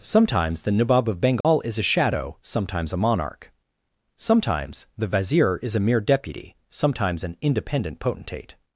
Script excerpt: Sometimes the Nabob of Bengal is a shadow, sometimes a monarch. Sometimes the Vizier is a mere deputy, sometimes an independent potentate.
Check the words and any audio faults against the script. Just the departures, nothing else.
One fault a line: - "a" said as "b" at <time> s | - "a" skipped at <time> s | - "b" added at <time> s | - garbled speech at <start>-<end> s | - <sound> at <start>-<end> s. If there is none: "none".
- dropout at 1.4-1.4 s